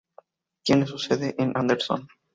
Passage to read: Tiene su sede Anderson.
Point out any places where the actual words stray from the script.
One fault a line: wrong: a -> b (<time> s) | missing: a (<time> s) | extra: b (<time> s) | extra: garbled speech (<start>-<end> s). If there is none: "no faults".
extra: en (1.4 s)